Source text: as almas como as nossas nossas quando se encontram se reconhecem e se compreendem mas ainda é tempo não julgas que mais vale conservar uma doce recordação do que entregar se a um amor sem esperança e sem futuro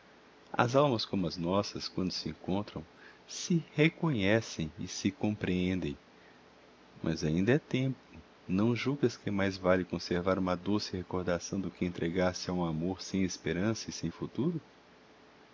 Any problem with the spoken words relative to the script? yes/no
yes